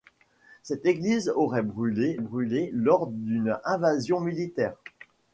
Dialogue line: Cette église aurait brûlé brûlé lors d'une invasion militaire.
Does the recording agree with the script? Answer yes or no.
yes